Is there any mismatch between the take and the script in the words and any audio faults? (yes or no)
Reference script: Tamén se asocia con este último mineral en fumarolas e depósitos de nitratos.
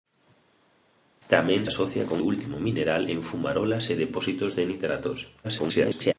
yes